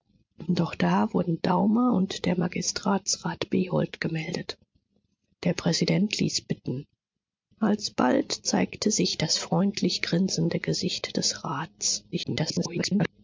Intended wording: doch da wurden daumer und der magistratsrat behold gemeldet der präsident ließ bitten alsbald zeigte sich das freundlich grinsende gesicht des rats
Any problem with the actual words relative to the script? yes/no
yes